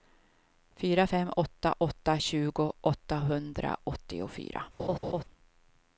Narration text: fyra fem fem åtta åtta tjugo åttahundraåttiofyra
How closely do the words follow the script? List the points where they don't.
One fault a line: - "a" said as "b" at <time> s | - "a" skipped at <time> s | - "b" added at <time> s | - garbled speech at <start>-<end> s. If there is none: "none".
- "fem" skipped at 1.3 s